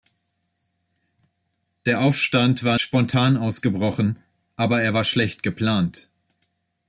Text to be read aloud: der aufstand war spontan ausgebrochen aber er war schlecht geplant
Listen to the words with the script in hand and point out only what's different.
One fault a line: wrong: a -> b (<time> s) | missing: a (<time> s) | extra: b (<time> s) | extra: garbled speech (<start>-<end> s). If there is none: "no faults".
no faults